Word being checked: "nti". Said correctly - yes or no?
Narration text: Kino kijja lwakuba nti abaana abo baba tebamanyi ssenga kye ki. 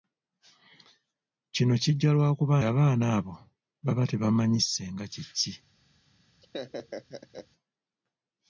no